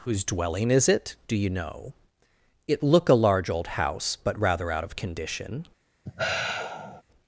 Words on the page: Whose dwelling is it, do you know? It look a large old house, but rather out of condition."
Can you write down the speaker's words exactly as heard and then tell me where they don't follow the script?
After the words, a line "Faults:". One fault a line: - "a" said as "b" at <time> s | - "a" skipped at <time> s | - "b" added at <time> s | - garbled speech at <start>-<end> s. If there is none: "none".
Whose dwelling is it, do you know? It look a large old house, but rather out of condition."
Faults:
none